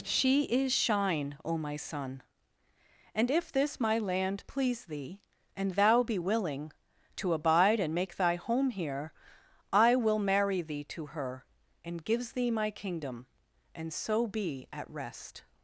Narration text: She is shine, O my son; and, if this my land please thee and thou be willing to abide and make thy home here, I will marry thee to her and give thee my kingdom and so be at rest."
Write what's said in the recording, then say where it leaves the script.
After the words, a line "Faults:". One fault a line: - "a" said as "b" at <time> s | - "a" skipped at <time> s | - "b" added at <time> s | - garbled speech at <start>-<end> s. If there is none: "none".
She is shine, O my son; and, if this my land please thee and thou be willing to abide and make thy home here, I will marry thee to her and gives thee my kingdom and so be at rest."
Faults:
- "give" said as "gives" at 12.0 s